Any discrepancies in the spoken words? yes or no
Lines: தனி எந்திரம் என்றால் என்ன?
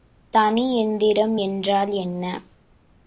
no